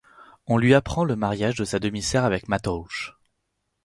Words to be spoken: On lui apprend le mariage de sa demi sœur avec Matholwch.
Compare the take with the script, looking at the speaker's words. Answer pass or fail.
pass